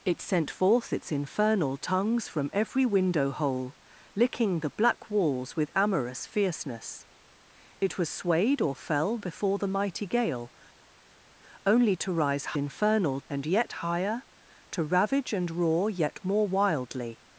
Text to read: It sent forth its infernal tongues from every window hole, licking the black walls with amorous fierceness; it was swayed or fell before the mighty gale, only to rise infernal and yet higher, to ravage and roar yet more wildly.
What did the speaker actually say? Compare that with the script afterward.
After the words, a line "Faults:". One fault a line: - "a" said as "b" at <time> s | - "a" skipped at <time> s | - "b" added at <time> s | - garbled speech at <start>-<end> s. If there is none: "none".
It sent forth its infernal tongues from every window hole, licking the black walls with amorous fierceness; it was swayed or fell before the mighty gale, only to rise infernal and yet higher, to ravage and roar yet more wildly.
Faults:
none